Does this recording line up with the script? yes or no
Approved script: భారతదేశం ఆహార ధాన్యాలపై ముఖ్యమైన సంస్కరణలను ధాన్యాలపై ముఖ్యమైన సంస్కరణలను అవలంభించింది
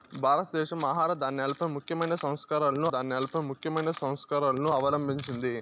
yes